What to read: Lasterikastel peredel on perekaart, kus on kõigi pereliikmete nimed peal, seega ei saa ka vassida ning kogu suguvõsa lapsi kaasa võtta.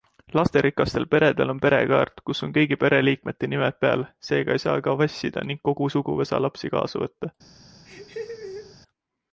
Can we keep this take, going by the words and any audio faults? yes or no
no